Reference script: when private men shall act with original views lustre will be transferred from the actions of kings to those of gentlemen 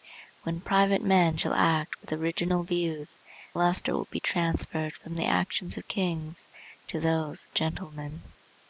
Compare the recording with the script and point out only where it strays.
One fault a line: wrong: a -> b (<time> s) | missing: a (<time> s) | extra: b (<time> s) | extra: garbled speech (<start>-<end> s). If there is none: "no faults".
no faults